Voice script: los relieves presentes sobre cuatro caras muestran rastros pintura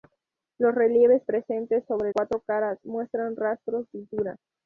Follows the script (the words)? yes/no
yes